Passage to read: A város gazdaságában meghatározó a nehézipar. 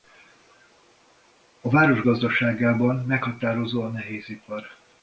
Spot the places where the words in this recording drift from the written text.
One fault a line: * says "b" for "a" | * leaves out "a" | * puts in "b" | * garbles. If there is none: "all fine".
all fine